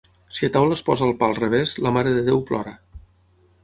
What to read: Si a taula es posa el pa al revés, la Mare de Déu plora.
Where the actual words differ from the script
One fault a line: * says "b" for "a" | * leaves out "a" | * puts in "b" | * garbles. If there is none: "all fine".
all fine